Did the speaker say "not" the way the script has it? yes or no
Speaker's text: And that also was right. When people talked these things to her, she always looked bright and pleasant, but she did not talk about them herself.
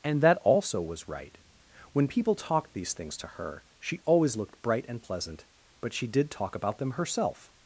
no